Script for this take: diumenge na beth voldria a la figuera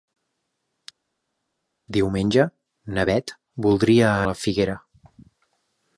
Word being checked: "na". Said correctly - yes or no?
yes